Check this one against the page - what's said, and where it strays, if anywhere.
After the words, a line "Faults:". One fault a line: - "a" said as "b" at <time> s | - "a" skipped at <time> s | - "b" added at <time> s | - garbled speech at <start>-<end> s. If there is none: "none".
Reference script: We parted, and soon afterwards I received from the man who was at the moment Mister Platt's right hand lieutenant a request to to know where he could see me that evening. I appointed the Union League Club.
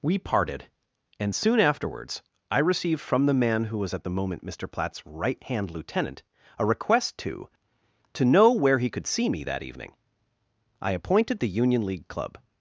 We parted, and soon afterwards I received from the man who was at the moment Mister Platt's right hand lieutenant a request to to know where he could see me that evening. I appointed the Union League Club.
Faults:
none